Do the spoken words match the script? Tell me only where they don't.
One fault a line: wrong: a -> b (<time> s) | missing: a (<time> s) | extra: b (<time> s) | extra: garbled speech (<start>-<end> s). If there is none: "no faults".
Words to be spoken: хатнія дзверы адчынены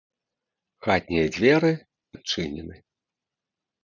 no faults